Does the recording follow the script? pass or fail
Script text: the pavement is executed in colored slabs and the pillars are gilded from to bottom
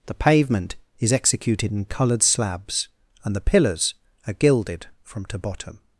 pass